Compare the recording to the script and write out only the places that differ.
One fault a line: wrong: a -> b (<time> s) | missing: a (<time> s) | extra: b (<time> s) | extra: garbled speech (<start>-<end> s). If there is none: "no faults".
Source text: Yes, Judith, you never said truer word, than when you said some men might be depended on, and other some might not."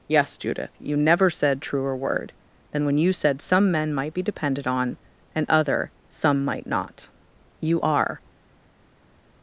extra: You are (7.6 s)